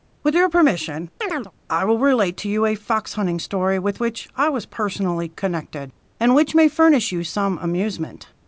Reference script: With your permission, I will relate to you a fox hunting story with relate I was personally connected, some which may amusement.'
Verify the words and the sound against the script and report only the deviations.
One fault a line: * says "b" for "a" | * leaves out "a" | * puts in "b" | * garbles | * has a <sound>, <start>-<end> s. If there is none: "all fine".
* has a chirp, 1.2-1.5 s
* says "which" for "relate"
* says "and" for "some"
* puts in "furnish you some"